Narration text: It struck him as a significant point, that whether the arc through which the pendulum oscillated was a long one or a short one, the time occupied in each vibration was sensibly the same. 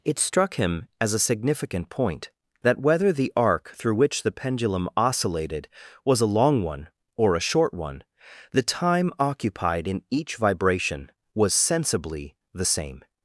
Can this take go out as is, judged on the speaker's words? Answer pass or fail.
pass